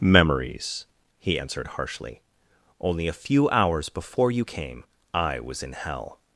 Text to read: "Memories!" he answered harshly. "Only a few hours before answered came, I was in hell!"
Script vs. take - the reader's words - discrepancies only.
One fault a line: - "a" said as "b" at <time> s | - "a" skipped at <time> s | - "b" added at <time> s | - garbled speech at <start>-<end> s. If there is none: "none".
- "answered" said as "you" at 4.3 s